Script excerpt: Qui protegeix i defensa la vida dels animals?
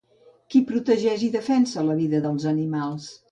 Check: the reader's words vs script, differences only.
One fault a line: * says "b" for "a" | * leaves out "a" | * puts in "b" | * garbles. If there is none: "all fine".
all fine